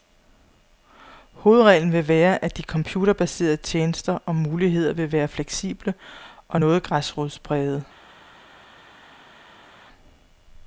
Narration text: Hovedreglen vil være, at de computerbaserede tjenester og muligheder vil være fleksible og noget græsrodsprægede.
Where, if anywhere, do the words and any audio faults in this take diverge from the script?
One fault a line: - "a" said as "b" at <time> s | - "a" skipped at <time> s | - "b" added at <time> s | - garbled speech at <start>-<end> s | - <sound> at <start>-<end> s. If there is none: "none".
none